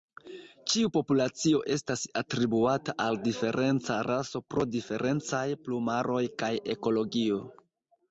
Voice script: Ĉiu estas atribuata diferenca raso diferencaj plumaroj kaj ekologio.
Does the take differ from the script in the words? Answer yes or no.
yes